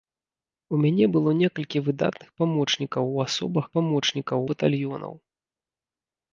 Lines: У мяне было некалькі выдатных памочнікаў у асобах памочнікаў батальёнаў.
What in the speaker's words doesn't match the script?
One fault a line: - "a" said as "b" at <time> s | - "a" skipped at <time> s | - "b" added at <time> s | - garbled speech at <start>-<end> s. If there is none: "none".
none